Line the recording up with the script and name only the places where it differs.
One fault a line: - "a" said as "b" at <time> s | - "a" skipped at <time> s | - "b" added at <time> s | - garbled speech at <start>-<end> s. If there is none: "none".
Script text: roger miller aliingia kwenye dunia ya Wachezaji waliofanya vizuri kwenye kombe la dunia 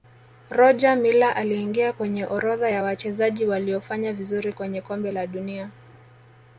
- "dunia" said as "orodha" at 2.2 s